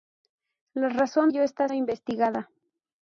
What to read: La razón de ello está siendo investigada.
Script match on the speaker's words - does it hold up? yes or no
no